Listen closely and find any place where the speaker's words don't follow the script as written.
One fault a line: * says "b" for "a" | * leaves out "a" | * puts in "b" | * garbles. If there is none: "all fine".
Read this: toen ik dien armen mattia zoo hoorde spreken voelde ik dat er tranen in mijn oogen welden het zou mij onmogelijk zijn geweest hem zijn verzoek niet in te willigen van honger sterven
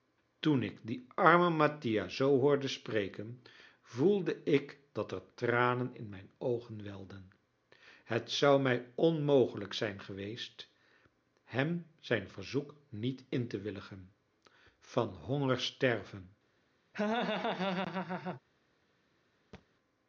all fine